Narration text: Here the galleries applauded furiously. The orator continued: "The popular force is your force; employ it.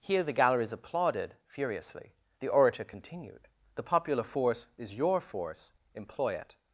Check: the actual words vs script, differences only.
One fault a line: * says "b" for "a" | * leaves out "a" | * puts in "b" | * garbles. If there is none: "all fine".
all fine